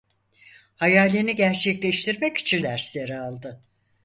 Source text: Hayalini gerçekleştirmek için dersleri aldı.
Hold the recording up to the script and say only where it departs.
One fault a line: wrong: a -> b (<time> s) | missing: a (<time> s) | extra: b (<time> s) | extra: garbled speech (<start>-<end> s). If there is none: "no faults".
no faults